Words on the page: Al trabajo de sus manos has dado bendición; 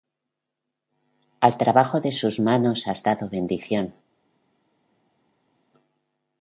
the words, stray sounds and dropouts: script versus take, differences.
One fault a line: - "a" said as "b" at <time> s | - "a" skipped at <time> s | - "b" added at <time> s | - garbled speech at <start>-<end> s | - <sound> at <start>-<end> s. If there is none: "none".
none